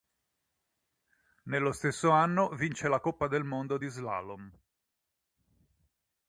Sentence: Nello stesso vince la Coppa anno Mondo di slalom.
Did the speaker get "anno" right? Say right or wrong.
wrong